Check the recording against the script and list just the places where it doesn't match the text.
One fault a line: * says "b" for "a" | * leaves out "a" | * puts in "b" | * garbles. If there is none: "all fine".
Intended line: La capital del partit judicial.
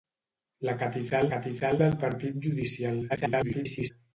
* puts in "capital"
* garbles